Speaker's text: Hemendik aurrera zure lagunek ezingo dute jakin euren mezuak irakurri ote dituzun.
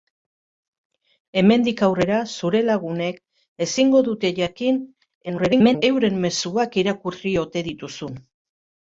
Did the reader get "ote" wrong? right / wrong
right